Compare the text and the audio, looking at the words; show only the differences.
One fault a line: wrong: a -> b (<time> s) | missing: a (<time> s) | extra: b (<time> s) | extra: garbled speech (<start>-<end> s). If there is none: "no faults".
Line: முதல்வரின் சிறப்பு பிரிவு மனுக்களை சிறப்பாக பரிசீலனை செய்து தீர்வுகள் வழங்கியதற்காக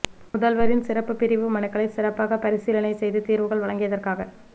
no faults